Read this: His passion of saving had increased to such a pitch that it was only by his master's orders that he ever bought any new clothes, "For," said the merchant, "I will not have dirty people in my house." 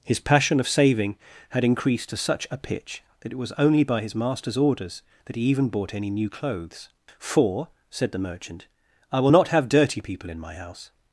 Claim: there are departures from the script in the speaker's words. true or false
true